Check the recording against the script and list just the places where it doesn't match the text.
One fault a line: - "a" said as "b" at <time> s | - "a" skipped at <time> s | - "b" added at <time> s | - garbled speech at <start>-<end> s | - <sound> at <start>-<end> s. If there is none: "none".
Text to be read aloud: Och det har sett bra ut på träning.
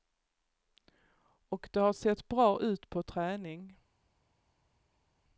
none